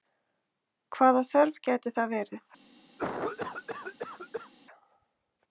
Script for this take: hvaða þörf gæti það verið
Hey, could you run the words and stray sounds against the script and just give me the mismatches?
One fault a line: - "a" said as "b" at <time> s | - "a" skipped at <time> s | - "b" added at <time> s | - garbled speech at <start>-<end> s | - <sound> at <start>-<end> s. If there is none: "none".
- cough at 3.0-4.5 s